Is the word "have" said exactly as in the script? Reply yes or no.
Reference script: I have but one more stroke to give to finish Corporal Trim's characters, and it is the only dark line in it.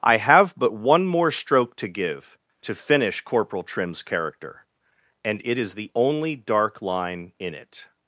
yes